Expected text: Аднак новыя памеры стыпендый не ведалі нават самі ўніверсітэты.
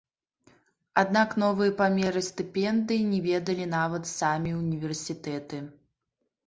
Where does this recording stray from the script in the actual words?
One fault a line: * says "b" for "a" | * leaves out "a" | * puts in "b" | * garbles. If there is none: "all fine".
all fine